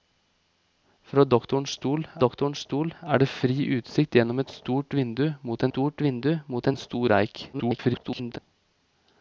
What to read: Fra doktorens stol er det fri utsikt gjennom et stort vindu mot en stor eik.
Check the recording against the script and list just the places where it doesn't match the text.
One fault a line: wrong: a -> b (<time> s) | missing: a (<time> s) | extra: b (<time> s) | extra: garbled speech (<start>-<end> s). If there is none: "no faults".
extra: doktorens stol (2.2 s)
extra: stort vindu mot (5.7 s)
extra: garbled speech (7.5-8.4 s)